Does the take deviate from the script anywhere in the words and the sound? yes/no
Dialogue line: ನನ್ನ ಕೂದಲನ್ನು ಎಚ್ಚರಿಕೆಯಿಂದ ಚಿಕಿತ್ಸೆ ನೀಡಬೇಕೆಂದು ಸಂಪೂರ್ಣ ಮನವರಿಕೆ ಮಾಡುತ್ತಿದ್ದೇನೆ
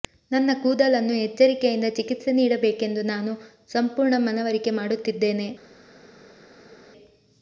yes